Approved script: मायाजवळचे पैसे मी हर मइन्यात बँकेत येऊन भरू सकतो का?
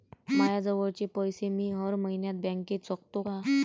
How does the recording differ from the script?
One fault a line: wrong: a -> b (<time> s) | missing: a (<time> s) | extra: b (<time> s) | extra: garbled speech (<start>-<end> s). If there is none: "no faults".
missing: येऊन भरू (2.9 s)